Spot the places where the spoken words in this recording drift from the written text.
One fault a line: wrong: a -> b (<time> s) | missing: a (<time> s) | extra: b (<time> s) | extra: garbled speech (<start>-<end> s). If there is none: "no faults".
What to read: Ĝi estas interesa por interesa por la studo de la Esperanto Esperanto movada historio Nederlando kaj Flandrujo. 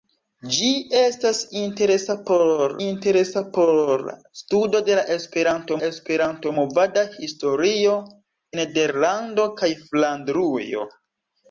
no faults